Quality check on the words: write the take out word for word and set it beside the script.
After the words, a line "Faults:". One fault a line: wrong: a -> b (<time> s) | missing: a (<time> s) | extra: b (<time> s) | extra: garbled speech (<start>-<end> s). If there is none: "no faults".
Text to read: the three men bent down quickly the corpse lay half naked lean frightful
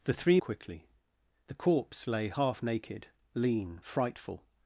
the three quickly the corpse lay half naked lean frightful
Faults:
missing: men bent down (0.4 s)